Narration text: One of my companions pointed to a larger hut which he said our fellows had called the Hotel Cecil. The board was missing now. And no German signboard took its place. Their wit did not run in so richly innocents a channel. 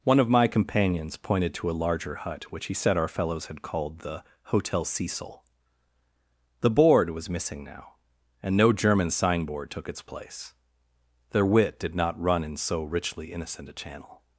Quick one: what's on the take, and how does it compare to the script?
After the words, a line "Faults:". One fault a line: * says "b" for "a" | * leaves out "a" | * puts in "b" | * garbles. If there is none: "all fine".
One of my companions pointed to a larger hut which he said our fellows had called the Hotel Cecil. The board was missing now. And no German signboard took its place. Their wit did not run in so richly innocent a channel.
Faults:
* says "innocent" for "innocents"